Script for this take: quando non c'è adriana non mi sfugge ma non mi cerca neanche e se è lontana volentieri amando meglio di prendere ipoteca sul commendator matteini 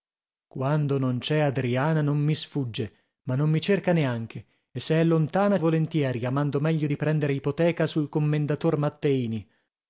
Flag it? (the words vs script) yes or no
no